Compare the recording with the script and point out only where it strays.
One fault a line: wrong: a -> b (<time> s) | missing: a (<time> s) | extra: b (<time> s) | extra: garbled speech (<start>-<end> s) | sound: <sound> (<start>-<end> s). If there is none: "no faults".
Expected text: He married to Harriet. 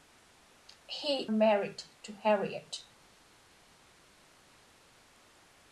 no faults